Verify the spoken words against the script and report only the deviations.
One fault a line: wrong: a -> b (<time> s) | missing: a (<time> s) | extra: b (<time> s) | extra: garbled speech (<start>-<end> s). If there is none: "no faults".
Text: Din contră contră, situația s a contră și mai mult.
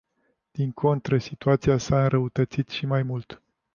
missing: contră (1.2 s)
wrong: contră -> înrăutățit (2.0 s)